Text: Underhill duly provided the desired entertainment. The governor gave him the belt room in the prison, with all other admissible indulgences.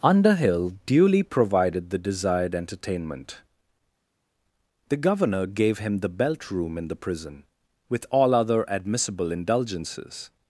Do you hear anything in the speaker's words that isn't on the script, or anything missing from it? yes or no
no